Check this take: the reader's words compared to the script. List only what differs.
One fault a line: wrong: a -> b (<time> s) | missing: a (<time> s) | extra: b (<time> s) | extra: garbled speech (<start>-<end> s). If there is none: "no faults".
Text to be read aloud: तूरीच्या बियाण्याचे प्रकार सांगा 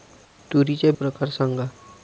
missing: बियाण्याचे (0.9 s)